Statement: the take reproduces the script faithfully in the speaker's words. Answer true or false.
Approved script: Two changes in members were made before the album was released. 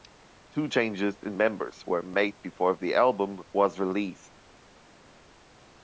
true